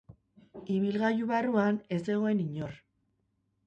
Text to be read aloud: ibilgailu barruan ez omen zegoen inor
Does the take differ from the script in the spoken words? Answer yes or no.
yes